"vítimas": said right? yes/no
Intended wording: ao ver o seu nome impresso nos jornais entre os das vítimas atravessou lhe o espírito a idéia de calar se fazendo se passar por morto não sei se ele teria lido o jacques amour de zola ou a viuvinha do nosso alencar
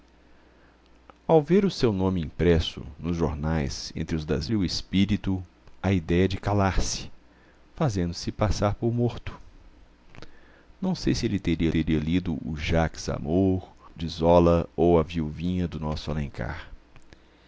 no